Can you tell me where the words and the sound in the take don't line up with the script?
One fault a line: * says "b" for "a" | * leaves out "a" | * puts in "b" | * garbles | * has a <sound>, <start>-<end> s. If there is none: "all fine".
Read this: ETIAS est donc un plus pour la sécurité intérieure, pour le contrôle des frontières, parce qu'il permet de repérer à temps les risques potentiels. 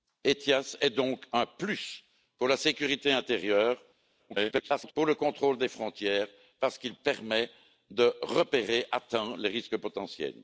* garbles